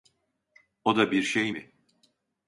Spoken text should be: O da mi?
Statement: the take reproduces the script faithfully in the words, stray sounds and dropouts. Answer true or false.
false